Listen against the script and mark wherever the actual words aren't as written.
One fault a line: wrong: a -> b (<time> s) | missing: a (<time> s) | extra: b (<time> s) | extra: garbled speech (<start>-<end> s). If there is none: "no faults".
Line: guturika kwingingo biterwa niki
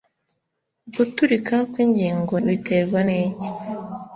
no faults